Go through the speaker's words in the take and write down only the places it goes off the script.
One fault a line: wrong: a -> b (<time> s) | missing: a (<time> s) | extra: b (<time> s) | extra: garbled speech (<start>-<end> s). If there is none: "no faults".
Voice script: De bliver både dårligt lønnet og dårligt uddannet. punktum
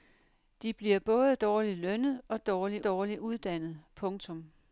extra: dårligt (2.8 s)